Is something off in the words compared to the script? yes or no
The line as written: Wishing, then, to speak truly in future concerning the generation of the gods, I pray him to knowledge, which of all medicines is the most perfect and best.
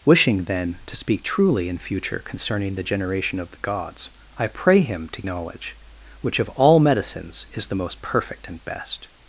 no